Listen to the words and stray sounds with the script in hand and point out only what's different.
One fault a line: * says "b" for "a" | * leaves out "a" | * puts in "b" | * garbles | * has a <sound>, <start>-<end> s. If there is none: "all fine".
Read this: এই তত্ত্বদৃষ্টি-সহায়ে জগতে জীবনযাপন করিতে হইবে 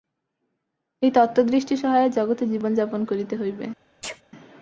* has a sneeze, 4.0-4.2 s